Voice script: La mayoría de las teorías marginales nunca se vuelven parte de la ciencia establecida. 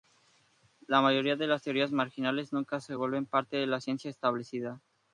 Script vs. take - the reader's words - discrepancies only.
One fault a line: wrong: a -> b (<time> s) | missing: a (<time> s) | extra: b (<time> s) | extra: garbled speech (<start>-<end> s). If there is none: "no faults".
no faults